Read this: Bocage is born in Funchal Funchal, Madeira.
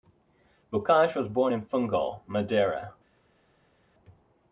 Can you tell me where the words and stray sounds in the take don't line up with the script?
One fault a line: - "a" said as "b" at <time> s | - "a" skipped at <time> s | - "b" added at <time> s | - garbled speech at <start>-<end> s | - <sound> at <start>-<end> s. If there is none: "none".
- "is" said as "was" at 1.1 s
- "Funchal" skipped at 2.2 s